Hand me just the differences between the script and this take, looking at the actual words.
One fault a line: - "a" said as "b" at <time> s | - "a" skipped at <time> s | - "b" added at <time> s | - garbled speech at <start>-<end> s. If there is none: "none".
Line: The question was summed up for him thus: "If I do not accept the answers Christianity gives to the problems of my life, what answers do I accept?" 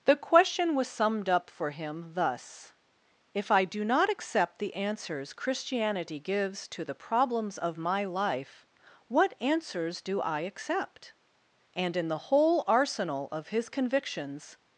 - "And in the whole arsenal of his convictions" added at 11.7 s